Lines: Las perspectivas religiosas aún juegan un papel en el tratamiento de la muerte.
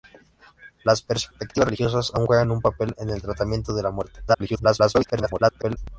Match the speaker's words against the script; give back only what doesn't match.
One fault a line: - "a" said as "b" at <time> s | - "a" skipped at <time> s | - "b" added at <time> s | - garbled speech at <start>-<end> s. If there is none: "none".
- garbled speech at 4.3-5.8 s